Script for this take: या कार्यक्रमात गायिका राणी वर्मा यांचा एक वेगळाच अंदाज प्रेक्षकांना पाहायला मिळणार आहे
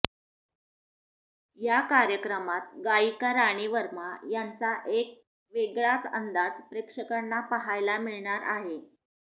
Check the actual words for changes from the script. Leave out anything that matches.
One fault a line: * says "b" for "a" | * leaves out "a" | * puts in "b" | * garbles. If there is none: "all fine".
all fine